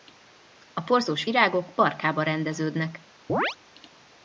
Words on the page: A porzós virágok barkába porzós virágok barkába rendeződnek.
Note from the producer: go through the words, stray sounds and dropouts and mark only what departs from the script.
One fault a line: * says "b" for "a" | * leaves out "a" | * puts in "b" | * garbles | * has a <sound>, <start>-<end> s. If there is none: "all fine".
* leaves out "porzós virágok barkába"
* has a chirp, 3.3-3.6 s